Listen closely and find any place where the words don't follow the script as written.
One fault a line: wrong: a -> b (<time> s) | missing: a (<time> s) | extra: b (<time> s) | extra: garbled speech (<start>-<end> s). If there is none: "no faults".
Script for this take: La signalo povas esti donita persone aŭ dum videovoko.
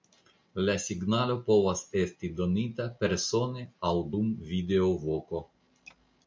no faults